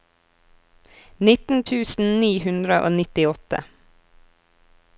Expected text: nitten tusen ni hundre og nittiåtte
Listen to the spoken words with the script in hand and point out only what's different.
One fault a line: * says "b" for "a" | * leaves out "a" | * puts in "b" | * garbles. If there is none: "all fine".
all fine